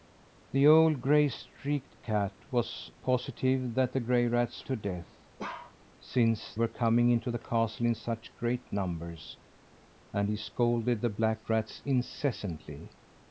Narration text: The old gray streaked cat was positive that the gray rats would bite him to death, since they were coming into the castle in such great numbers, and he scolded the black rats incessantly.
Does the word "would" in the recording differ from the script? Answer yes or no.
yes